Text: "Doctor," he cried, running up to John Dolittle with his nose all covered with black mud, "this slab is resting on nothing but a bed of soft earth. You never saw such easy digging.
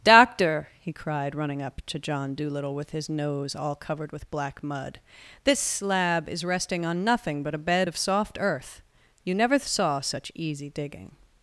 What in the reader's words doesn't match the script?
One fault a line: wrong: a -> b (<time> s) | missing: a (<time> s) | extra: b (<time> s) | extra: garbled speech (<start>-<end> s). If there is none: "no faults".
no faults